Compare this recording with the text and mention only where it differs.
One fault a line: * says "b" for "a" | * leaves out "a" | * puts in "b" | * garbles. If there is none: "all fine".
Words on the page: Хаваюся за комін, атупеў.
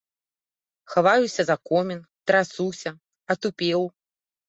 * puts in "трасуся"